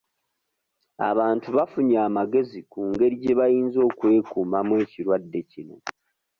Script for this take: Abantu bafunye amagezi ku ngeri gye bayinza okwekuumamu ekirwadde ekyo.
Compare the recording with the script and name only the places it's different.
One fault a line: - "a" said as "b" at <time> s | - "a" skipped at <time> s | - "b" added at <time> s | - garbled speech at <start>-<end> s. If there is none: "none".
- "ekyo" said as "kino" at 5.5 s